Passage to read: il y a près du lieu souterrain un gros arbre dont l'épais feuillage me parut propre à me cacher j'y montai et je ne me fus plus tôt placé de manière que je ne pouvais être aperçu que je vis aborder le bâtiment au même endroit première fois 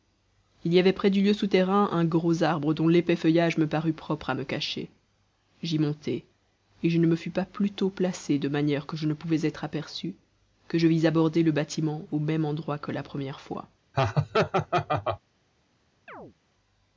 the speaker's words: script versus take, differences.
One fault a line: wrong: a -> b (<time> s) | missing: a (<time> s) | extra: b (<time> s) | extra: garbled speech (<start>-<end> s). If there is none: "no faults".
wrong: a -> avait (0.8 s)
extra: pas (7.3 s)
extra: que la (12.8 s)